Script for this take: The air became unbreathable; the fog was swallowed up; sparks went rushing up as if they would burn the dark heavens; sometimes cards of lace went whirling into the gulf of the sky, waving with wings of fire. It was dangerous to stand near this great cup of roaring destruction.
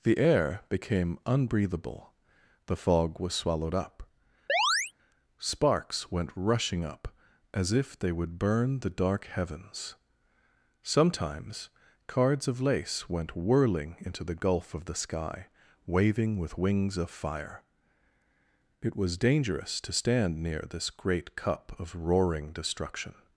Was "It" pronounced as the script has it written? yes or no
yes